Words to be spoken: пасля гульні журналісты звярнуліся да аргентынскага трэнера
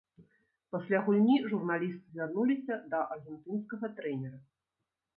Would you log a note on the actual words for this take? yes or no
no